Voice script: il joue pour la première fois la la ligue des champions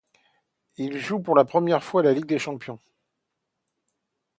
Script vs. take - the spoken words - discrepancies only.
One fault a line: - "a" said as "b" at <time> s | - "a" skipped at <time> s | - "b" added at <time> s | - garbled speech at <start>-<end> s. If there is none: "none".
- "la" skipped at 2.1 s